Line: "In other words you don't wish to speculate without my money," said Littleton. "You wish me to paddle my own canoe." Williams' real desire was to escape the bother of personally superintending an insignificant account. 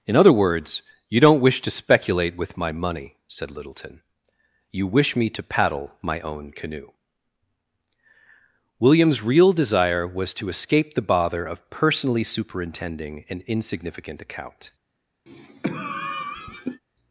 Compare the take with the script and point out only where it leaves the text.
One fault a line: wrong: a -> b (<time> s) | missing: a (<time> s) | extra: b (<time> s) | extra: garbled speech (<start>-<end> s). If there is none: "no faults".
wrong: without -> with (2.4 s)